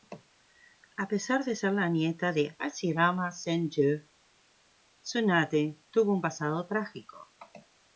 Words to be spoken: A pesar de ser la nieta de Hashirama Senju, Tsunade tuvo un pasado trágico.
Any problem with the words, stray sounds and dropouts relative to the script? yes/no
no